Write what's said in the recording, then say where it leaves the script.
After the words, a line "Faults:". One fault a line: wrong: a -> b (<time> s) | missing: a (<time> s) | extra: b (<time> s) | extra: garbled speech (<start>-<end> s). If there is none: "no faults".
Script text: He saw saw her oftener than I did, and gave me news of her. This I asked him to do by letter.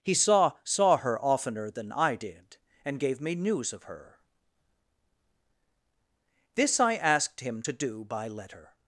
He saw saw her oftener than I did, and gave me news of her. This I asked him to do by letter.
Faults:
no faults